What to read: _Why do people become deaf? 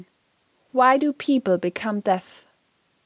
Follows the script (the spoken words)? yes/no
yes